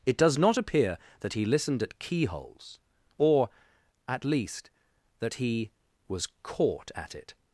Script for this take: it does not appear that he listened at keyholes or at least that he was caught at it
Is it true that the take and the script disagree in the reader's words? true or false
false